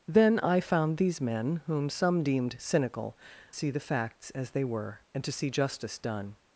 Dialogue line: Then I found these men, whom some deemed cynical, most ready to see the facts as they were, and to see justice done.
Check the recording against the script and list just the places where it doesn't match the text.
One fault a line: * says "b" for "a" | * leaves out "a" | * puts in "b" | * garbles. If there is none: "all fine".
* leaves out "most ready to"